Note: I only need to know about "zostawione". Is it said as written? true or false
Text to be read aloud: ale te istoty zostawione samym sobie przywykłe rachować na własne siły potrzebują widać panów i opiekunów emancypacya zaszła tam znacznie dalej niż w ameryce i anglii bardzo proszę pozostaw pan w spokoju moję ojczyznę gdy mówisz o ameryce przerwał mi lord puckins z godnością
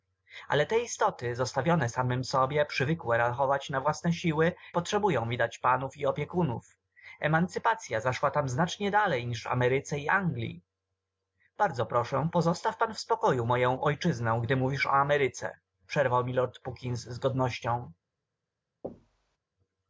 true